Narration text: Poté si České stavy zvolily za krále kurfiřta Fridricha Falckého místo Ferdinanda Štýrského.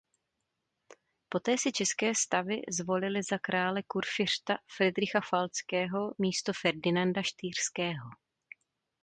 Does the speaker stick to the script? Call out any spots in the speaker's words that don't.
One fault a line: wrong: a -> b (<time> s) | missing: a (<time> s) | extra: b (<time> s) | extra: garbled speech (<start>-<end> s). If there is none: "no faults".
no faults